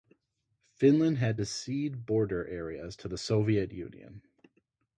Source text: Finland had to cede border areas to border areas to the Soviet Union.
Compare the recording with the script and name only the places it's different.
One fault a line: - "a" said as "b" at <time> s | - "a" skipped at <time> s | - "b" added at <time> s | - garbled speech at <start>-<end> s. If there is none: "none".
- "border areas to" skipped at 3.1 s